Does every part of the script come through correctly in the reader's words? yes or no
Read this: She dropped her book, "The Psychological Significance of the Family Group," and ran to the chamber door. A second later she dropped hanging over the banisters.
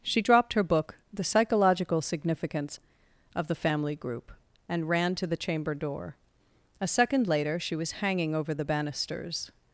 no